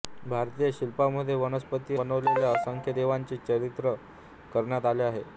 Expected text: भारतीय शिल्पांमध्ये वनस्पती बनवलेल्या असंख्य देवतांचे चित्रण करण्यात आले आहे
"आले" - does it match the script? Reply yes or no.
yes